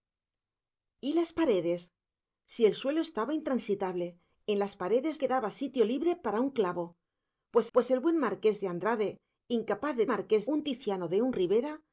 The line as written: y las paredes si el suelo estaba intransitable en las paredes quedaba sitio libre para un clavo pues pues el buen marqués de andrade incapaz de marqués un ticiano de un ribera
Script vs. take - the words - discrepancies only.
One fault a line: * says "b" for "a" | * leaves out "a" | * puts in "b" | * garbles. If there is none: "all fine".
all fine